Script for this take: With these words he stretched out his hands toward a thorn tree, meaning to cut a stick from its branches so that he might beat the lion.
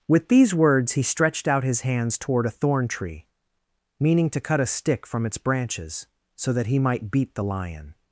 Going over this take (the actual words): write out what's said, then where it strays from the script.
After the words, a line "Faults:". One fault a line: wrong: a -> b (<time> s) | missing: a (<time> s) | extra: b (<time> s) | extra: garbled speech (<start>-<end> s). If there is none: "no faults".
With these words he stretched out his hands toward a thorn tree, meaning to cut a stick from its branches so that he might beat the lion.
Faults:
no faults